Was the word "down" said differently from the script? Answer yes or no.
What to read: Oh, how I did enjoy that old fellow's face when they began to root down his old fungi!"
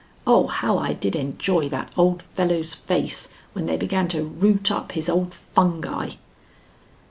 yes